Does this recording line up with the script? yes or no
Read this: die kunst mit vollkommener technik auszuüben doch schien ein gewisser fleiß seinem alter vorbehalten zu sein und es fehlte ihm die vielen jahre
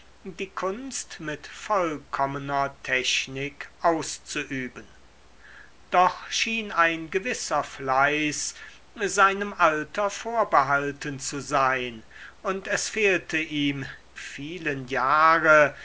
no